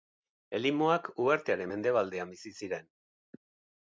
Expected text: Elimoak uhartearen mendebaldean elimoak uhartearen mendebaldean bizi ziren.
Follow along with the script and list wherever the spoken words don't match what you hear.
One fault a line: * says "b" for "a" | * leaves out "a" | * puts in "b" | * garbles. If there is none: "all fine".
* leaves out "elimoak uhartearen mendebaldean"